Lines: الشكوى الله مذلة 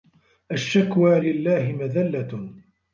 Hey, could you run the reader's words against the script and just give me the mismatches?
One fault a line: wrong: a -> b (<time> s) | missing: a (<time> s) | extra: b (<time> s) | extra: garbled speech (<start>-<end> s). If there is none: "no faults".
no faults